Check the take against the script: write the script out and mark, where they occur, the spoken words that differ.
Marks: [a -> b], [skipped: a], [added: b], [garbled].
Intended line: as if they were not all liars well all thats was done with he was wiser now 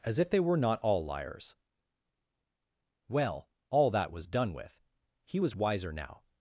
as if they were not all liars well all [thats -> that] was done with he was wiser now